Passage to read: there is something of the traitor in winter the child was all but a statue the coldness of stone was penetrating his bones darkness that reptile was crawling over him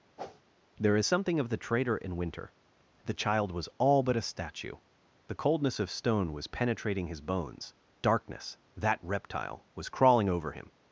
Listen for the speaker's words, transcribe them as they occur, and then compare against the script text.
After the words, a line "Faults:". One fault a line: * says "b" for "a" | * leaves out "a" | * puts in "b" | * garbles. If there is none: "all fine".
there is something of the traitor in winter the child was all but a statue the coldness of stone was penetrating his bones darkness that reptile was crawling over him
Faults:
all fine